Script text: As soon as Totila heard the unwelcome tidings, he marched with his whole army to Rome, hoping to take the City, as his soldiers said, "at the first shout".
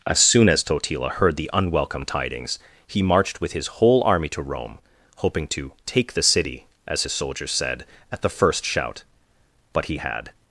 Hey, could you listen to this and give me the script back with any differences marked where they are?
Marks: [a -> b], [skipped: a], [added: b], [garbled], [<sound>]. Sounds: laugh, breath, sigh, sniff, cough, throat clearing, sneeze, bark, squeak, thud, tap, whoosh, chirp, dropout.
As soon as Totila heard the unwelcome tidings, he marched with his whole army to Rome, hoping to take the City, as his soldiers said, "at the first shout". [added: But he had]